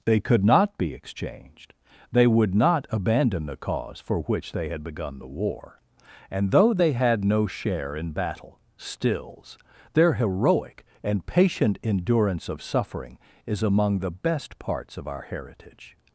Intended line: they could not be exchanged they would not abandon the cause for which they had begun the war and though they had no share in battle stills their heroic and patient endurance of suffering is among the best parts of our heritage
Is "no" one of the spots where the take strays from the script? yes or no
no